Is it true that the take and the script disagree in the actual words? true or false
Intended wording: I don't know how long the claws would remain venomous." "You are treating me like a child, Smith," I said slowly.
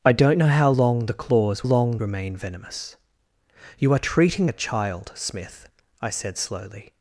true